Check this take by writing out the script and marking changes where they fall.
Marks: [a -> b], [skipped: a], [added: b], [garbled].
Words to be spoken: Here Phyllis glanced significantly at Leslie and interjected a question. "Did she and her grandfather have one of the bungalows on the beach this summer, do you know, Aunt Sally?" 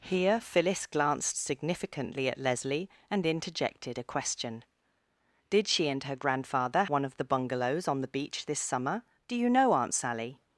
Here Phyllis glanced significantly at Leslie and interjected a question. "Did she and her grandfather [skipped: have] one of the bungalows on the beach this summer, do you know, Aunt Sally?"